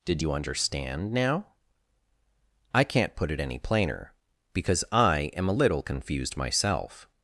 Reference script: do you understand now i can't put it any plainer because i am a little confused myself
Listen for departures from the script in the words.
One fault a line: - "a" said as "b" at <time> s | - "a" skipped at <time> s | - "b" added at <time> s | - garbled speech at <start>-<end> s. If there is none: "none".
- "do" said as "did" at 0.1 s